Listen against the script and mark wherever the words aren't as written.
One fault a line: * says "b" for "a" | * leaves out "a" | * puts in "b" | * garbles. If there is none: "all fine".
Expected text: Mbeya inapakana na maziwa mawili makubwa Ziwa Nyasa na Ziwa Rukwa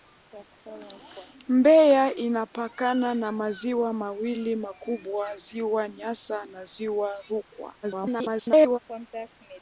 * garbles